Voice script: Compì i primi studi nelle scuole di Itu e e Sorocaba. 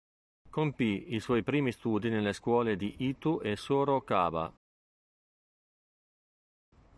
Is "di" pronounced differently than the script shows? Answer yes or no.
no